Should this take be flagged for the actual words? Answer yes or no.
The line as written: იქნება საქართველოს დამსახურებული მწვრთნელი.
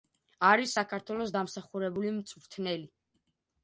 yes